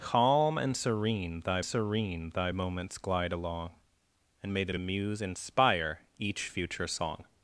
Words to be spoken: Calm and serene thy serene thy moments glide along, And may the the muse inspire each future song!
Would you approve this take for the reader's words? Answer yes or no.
yes